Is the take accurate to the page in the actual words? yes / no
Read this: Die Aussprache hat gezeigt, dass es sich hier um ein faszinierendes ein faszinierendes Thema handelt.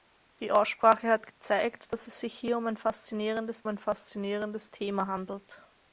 yes